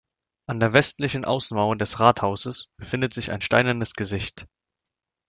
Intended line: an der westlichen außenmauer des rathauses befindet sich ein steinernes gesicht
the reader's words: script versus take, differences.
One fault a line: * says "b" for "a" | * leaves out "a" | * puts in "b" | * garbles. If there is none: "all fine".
all fine